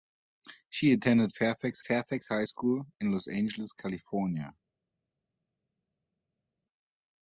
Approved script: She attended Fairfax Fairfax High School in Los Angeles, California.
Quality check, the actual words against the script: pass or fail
pass